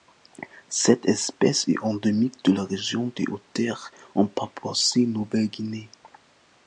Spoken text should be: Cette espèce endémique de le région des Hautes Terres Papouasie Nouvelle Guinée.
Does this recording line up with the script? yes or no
no